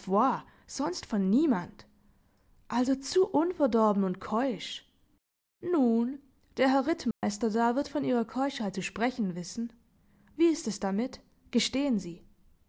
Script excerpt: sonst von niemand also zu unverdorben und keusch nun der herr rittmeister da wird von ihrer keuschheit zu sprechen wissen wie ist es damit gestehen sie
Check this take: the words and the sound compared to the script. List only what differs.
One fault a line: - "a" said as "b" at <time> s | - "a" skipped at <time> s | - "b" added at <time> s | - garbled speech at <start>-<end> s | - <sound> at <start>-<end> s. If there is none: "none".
- dropout at 7.1-7.2 s